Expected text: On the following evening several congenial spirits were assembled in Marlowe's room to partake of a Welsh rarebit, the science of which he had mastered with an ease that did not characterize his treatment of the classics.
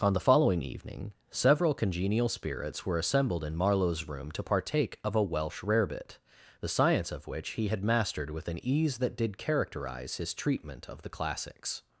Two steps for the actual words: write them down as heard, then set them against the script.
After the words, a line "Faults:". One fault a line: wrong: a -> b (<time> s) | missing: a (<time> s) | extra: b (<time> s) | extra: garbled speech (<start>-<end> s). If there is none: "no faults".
On the following evening several congenial spirits were assembled in Marlowe's room to partake of a Welsh rarebit, the science of which he had mastered with an ease that did characterize his treatment of the classics.
Faults:
missing: not (9.4 s)